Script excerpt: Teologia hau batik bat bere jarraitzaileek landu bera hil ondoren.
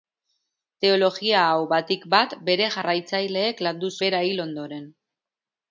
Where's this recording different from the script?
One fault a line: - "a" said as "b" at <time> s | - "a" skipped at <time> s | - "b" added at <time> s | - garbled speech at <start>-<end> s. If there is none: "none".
none